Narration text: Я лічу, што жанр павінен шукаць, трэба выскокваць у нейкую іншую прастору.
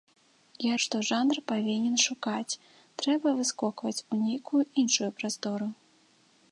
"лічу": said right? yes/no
no